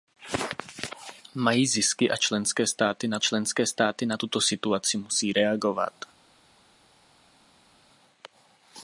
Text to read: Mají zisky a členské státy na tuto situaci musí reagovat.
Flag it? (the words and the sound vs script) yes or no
yes